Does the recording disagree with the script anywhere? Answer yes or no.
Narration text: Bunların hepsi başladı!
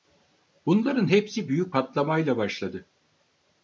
yes